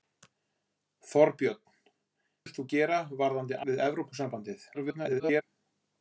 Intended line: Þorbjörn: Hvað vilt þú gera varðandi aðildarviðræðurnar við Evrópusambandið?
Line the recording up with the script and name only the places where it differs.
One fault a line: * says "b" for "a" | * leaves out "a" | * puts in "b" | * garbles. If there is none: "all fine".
* leaves out "Hvað"
* leaves out "aðildarviðræðurnar"
* garbles